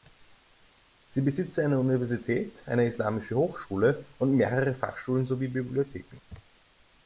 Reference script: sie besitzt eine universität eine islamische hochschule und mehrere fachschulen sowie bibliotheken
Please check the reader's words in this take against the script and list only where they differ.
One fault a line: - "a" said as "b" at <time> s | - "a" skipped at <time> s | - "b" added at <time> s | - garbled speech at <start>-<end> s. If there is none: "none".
none